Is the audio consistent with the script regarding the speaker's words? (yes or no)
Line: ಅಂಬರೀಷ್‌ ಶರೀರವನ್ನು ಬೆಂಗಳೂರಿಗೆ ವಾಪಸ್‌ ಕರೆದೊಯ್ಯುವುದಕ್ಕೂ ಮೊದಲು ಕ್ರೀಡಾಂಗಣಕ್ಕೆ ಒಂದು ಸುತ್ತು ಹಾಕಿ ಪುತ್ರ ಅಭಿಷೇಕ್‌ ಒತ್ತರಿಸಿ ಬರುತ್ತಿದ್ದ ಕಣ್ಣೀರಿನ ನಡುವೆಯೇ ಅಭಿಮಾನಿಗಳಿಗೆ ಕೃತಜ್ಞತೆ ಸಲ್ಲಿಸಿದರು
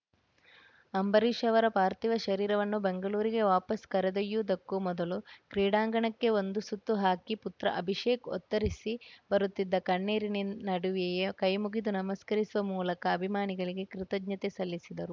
no